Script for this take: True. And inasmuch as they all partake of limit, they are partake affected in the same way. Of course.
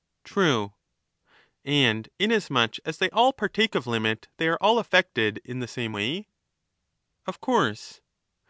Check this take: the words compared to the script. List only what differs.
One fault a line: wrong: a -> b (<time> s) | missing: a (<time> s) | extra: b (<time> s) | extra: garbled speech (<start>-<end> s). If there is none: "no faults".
wrong: partake -> all (4.6 s)